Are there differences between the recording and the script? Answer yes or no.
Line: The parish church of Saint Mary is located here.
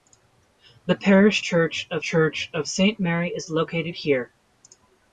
yes